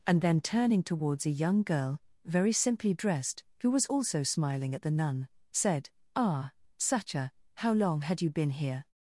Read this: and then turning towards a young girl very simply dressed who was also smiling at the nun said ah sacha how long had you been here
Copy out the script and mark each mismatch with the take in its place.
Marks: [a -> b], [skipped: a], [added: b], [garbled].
and then turning towards a young girl very simply dressed who was also smiling at the nun said ah sacha how long had you been here